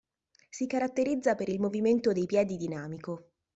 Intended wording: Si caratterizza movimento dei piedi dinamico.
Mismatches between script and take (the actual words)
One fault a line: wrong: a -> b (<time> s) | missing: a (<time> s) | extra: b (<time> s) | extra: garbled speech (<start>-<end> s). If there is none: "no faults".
extra: per il (1.4 s)